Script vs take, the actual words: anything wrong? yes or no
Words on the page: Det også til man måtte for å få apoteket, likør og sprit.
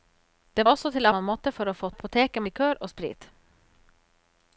no